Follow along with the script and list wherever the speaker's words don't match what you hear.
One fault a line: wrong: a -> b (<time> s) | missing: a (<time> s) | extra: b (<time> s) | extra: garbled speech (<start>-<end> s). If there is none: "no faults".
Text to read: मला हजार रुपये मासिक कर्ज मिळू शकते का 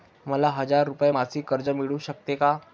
no faults